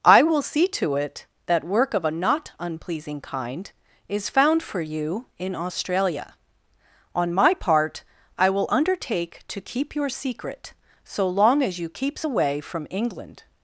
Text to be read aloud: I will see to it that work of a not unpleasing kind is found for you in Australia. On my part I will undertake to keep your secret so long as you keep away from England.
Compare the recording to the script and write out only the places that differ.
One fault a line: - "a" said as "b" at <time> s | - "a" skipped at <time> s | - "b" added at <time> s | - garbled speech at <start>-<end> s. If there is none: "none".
- "keep" said as "keeps" at 11.9 s